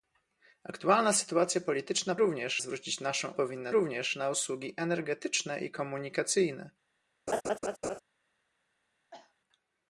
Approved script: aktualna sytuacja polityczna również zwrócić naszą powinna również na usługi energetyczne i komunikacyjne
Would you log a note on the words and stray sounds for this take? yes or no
yes